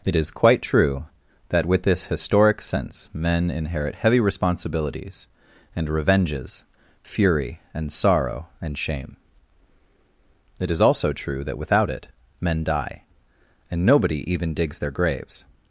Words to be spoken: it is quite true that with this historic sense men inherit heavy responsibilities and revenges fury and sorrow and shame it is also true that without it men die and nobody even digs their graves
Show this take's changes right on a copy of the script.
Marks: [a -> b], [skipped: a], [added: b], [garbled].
it is quite true that with this historic sense men inherit heavy responsibilities and revenges fury and sorrow and shame it is also true that without it men die and nobody even digs their graves